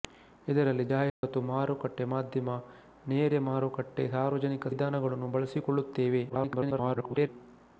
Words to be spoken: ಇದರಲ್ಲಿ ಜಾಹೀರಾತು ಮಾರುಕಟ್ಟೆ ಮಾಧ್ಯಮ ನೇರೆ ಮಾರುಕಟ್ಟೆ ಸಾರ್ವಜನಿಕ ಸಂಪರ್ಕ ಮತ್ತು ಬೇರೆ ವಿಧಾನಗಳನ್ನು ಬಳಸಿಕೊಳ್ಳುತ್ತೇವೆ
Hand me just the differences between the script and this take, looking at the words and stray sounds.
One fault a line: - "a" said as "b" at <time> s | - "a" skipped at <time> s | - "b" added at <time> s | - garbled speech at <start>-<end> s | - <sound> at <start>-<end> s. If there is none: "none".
- dropout at 1.1-1.2 s
- "ಸಂಪರ್ಕ ಮತ್ತು ಬೇರೆ" skipped at 4.7 s
- garbled speech at 6.3-7.3 s